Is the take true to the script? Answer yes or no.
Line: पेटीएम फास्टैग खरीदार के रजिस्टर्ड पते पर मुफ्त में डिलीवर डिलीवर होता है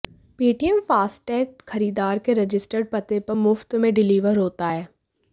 no